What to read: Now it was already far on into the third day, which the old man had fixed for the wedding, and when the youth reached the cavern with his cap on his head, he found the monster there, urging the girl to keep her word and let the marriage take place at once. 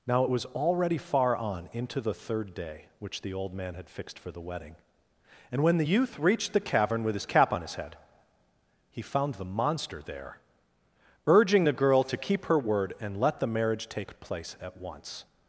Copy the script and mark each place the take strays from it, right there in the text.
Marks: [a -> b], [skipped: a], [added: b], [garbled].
Now it was already far on into the third day, which the old man had fixed for the wedding, and when the youth reached the cavern with his cap on his head, he found the monster there, urging the girl to keep her word and let the marriage take place at once.